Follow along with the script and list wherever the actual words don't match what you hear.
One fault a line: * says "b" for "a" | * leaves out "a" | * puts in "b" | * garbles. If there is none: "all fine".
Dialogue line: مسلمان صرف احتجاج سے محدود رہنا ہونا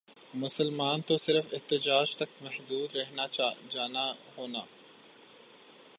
* puts in "تو"
* says "تک" for "سے"
* puts in "جانا"